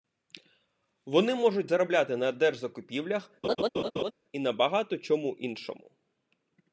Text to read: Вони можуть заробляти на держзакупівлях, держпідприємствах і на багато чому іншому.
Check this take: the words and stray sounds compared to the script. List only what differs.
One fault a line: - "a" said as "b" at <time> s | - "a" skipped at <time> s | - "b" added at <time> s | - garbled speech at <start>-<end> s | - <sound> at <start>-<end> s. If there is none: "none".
- "держпідприємствах" skipped at 3.3 s
- laugh at 3.4-4.1 s